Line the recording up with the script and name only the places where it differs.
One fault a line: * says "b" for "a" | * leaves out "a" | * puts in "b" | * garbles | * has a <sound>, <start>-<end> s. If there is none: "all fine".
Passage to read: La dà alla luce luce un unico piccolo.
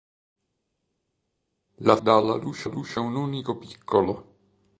all fine